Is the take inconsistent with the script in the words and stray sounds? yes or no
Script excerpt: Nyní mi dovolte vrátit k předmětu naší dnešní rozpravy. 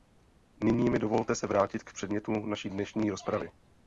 yes